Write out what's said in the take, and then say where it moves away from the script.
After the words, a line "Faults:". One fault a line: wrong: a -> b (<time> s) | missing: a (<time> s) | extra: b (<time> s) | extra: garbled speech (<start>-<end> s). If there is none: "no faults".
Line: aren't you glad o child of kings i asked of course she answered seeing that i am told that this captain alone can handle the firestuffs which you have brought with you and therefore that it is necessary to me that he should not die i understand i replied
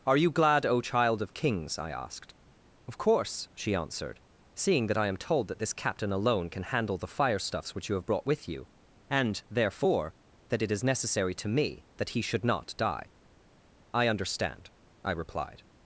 are you glad o child of kings i asked of course she answered seeing that i am told that this captain alone can handle the firestuffs which you have brought with you and therefore that it is necessary to me that he should not die i understand i replied
Faults:
wrong: aren't -> are (0.1 s)